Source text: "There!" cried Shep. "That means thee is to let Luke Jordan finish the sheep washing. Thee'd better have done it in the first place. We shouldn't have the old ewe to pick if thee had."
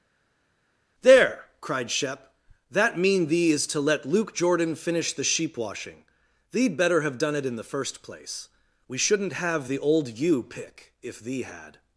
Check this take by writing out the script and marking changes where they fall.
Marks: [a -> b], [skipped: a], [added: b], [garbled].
"There!" cried Shep. "That [means -> mean] thee is to let Luke Jordan finish the sheep washing. Thee'd better have done it in the first place. We shouldn't have the old ewe [skipped: to] pick if thee had."